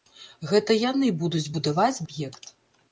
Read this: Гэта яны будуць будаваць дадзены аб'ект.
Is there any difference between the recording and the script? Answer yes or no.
yes